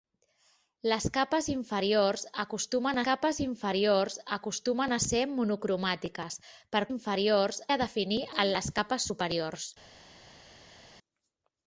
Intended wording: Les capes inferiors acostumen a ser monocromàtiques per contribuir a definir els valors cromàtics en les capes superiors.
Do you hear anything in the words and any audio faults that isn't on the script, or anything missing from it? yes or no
yes